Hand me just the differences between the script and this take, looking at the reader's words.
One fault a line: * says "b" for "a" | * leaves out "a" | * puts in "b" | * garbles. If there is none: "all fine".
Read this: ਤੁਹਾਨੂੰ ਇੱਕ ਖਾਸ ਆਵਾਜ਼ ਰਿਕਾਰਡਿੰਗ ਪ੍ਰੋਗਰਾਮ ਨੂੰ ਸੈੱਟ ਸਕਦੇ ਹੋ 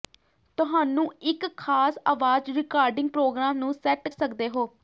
all fine